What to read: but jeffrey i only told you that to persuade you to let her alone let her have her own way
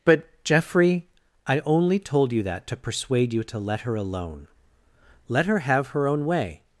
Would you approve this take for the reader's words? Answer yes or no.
yes